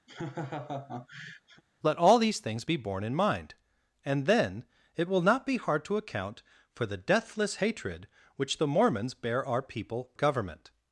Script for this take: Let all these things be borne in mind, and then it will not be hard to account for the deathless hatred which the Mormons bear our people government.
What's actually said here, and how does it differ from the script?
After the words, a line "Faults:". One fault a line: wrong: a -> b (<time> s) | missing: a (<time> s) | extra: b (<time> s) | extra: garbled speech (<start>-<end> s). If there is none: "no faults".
Let all these things be borne in mind, and then it will not be hard to account for the deathless hatred which the Mormons bear our people government.
Faults:
no faults